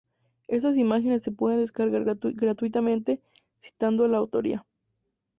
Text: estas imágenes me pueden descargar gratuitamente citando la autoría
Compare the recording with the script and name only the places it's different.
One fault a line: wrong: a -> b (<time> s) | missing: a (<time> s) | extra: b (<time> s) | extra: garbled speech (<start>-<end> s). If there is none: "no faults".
wrong: me -> se (1.2 s)